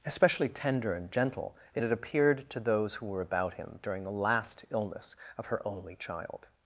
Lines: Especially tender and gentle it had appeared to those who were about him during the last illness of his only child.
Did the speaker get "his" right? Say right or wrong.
wrong